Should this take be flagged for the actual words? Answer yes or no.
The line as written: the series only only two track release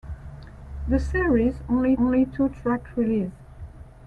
no